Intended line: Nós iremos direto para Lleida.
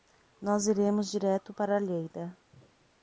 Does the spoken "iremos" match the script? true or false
true